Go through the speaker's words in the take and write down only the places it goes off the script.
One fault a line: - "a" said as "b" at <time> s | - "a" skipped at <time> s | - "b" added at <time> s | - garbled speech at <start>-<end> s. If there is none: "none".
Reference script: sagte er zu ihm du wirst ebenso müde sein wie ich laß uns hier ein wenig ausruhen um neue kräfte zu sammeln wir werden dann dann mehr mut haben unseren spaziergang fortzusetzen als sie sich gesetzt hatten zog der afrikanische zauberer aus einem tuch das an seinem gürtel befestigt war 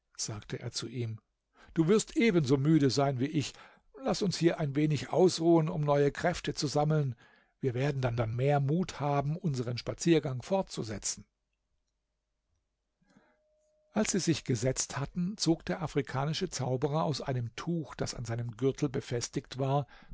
none